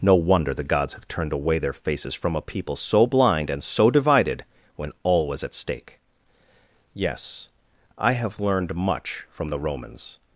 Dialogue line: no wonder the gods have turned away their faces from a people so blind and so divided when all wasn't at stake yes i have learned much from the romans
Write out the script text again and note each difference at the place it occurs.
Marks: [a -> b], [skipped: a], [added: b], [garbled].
no wonder the gods have turned away their faces from a people so blind and so divided when all [wasn't -> was] at stake yes i have learned much from the romans